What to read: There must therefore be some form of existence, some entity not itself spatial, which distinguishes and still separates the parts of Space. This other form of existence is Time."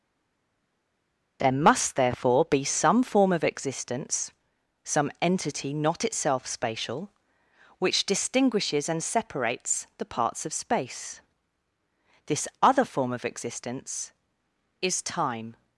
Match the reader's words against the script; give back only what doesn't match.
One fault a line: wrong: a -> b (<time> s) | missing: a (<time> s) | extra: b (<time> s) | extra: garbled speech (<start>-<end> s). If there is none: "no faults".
missing: still (9.0 s)